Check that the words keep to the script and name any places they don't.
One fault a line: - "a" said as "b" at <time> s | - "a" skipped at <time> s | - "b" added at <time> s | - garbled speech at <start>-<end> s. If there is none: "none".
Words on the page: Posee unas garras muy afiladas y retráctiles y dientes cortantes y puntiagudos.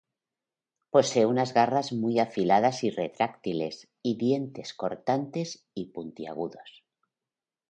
none